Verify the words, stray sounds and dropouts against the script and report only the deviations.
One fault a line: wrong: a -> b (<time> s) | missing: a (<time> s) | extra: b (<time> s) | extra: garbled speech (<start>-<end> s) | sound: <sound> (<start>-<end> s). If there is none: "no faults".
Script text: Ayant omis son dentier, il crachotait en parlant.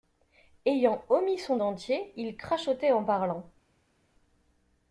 no faults